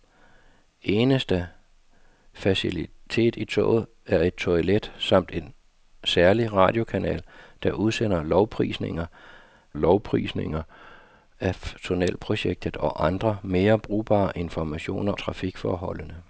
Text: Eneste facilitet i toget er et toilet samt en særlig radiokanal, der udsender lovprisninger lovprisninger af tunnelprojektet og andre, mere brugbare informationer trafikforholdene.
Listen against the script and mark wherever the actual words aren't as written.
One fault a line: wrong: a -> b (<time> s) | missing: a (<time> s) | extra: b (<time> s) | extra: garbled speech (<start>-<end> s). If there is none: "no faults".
no faults